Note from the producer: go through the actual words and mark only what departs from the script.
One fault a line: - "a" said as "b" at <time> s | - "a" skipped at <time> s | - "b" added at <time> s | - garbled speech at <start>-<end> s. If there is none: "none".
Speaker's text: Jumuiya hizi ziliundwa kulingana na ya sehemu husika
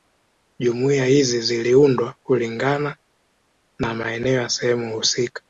- "maeneo" added at 3.9 s